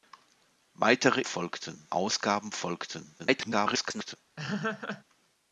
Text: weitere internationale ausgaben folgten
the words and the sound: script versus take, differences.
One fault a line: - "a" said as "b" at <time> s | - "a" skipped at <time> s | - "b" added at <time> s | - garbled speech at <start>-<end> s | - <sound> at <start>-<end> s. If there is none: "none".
- "internationale" said as "folgten" at 1.2 s
- garbled speech at 3.2-4.2 s
- laugh at 4.4-5.0 s